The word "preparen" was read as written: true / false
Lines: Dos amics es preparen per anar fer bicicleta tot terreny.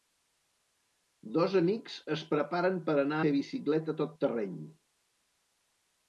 true